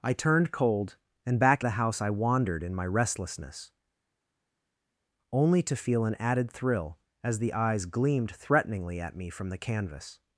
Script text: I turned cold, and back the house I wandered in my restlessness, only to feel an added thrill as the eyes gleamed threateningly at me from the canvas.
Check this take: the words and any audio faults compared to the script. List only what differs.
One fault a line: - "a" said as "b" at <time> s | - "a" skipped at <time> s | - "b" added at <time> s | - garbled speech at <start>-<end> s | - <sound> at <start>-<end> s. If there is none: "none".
none